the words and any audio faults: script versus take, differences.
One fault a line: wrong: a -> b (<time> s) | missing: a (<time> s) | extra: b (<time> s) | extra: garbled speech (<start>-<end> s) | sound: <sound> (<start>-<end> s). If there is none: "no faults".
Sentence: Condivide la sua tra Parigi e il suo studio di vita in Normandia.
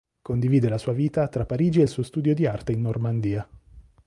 extra: vita (0.9 s)
wrong: vita -> arte (2.5 s)